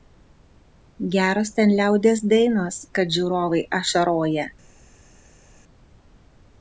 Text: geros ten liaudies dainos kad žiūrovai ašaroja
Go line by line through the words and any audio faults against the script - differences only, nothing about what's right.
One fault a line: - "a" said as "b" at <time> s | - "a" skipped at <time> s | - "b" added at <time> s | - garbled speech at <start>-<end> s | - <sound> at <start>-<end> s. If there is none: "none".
none